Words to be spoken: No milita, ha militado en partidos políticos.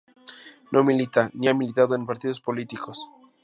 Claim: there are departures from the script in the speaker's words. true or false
true